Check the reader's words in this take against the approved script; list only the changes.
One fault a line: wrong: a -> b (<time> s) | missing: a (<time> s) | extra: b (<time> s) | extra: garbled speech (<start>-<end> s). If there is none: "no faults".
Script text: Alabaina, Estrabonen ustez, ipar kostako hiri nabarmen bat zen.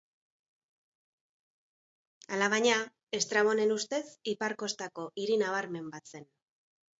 no faults